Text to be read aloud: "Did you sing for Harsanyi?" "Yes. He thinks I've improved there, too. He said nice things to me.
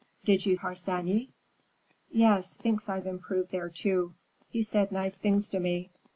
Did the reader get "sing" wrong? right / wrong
wrong